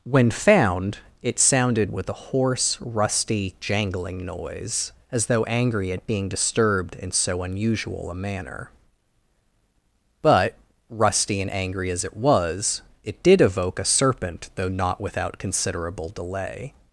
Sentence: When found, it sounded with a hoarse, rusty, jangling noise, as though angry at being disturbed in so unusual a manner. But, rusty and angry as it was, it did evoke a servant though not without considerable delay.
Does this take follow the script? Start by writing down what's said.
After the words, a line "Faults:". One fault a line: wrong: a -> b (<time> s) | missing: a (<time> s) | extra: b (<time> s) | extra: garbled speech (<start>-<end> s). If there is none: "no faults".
When found, it sounded with a hoarse, rusty, jangling noise, as though angry at being disturbed in so unusual a manner. But, rusty and angry as it was, it did evoke a serpent though not without considerable delay.
Faults:
wrong: servant -> serpent (13.8 s)